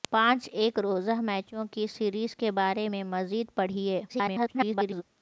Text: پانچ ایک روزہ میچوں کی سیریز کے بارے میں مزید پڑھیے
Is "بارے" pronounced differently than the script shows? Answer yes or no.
no